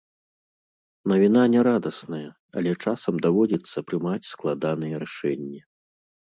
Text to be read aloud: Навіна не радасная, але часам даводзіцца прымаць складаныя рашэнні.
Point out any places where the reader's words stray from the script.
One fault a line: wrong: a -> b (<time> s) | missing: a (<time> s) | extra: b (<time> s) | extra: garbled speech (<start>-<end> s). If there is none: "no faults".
no faults